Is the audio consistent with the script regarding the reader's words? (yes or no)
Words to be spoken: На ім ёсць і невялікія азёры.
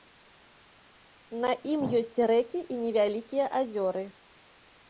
no